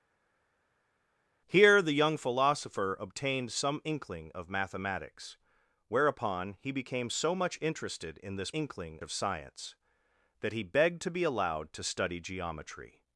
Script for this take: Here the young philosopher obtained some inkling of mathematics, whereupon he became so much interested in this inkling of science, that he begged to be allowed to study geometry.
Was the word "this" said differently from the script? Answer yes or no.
no